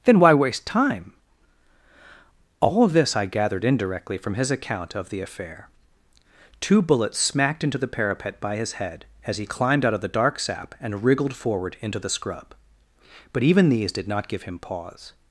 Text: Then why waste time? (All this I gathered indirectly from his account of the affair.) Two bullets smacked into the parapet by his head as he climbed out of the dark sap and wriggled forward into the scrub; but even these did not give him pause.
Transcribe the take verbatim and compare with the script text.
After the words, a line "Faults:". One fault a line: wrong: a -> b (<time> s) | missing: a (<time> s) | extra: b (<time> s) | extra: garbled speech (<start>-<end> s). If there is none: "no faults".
Then why waste time? (All this I gathered indirectly from his account of the affair.) Two bullets smacked into the parapet by his head as he climbed out of the dark sap and wriggled forward into the scrub; but even these did not give him pause.
Faults:
no faults